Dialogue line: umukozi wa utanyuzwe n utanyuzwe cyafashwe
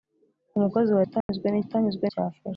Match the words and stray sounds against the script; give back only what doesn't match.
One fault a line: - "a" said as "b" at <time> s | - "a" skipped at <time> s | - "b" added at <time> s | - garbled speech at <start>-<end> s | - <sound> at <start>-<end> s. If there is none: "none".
- dropout at 1.2-1.3 s